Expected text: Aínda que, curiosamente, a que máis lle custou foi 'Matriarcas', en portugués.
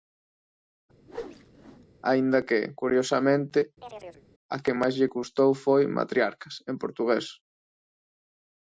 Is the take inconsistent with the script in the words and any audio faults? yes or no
yes